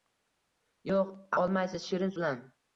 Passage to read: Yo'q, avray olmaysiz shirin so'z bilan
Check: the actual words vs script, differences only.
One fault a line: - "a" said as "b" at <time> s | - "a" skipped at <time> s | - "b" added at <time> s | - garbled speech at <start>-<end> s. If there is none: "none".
- "avray" skipped at 1.1 s
- "so'z" skipped at 2.1 s